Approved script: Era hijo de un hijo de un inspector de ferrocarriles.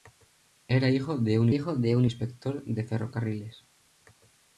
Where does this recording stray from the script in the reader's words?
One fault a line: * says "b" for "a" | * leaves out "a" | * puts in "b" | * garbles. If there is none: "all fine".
all fine